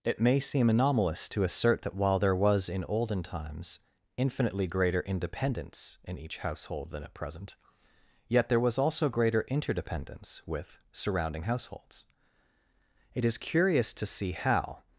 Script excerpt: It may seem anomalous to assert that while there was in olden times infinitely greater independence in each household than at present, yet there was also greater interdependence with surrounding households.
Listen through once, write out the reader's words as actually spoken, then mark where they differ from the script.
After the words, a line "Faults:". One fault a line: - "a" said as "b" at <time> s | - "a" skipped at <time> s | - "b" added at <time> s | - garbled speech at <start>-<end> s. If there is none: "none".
It may seem anomalous to assert that while there was in olden times infinitely greater independence in each household than at present, yet there was also greater interdependence with surrounding households. It is curious to see how
Faults:
- "It is curious to see how" added at 13.1 s